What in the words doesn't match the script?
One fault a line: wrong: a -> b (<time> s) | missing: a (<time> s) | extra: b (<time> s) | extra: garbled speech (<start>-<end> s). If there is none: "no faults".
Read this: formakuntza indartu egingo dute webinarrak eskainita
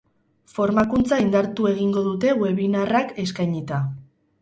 no faults